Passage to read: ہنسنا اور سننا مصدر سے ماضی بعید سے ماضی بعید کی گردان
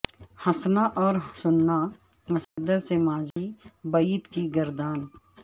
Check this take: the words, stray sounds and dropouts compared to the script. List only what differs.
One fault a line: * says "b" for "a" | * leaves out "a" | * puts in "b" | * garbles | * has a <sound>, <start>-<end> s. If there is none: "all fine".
* has a dropout, 2.4-2.6 s
* has a dropout, 3.3-3.4 s
* leaves out "سے ماضی بعید"